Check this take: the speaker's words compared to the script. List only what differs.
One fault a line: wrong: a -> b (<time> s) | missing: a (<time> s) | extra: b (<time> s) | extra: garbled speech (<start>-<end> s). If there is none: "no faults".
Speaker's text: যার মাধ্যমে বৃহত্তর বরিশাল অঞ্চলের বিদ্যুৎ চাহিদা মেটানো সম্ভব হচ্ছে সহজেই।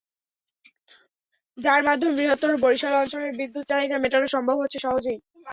no faults